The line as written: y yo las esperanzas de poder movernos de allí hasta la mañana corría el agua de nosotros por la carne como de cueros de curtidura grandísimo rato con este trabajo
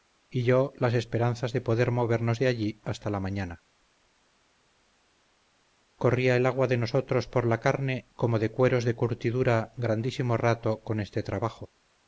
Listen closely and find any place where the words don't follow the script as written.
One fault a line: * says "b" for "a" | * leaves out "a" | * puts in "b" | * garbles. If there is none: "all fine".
all fine